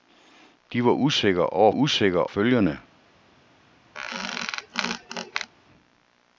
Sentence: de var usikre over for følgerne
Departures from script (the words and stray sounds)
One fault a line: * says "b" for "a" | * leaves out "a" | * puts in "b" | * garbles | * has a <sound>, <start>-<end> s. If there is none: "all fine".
* says "usikre" for "for"
* has a squeak, 3.9-5.5 s